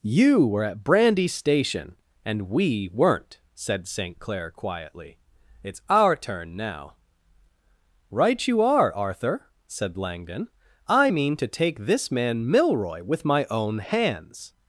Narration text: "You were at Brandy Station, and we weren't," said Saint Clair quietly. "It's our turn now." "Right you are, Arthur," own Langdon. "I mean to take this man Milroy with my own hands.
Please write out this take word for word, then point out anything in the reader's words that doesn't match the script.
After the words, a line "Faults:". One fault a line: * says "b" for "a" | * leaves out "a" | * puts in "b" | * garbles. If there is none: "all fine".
"You were at Brandy Station, and we weren't," said Saint Clair quietly. "It's our turn now." "Right you are, Arthur," said Langdon. "I mean to take this man Milroy with my own hands.
Faults:
* says "said" for "own"